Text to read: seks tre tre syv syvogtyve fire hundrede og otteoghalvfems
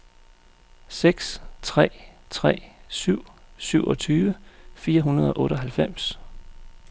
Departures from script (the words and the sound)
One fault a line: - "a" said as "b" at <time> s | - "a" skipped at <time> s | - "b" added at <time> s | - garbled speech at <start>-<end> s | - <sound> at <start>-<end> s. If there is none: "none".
none